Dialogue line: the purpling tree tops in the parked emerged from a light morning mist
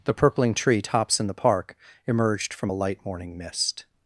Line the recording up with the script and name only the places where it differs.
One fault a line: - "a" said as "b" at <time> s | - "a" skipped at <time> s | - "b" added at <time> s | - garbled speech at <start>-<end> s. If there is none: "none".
- "parked" said as "park" at 1.3 s